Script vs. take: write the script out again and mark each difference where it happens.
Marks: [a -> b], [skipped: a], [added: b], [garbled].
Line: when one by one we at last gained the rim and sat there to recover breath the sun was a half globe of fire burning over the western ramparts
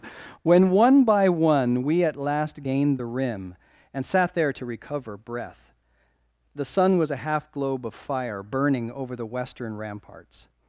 when one by one we at last gained the rim and sat there to recover breath the sun was a half globe of fire burning over the western ramparts